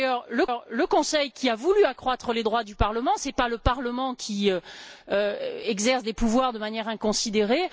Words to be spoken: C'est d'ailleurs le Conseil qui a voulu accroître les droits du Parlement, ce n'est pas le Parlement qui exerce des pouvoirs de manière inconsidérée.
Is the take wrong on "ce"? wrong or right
right